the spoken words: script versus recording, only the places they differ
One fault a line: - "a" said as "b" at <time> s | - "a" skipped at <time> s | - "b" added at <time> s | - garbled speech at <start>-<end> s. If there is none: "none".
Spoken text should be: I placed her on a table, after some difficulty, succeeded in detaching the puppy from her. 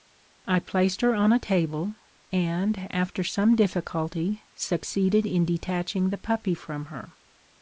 - "and" added at 2.3 s